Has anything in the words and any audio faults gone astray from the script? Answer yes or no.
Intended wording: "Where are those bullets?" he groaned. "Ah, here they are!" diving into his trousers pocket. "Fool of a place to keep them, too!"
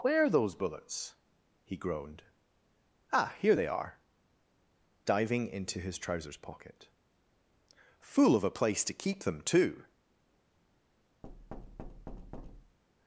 yes